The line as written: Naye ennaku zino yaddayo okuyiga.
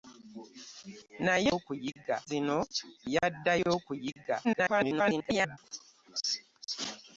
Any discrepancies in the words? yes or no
yes